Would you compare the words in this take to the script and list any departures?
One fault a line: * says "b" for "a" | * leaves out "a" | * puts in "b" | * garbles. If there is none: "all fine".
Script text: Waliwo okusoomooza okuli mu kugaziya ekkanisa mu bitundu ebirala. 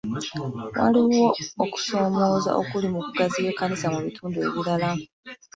all fine